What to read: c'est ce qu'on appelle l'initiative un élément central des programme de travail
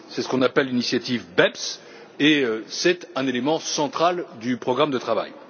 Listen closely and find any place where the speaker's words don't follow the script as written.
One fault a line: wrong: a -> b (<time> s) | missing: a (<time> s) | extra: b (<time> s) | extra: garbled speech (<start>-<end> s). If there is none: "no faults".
extra: beps et c'est (1.4 s)
wrong: des -> du (4.4 s)